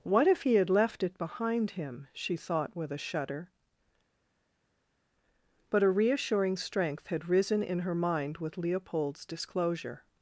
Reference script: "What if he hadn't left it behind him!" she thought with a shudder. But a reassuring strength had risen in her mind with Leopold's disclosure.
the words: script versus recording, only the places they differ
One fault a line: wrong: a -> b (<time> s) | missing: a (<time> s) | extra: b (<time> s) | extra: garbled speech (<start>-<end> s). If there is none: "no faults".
wrong: hadn't -> had (0.6 s)